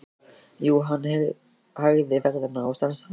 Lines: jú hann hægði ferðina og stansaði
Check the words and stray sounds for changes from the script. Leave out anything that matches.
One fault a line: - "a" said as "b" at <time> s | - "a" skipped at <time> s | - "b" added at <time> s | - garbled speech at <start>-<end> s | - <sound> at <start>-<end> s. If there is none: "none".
none